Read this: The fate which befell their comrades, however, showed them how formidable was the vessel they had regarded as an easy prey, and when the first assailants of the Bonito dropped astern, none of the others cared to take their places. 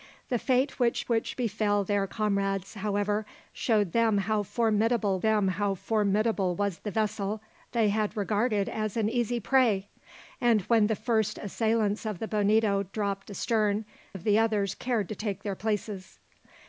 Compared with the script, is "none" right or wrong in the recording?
wrong